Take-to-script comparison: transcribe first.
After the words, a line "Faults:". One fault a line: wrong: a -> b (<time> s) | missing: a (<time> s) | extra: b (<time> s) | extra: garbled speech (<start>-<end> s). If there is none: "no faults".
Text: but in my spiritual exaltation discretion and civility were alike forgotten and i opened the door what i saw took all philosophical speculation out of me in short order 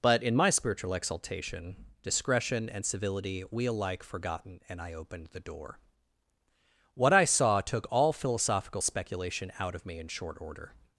but in my spiritual exaltation discretion and civility we alike forgotten and i opened the door what i saw took all philosophical speculation out of me in short order
Faults:
wrong: were -> we (3.5 s)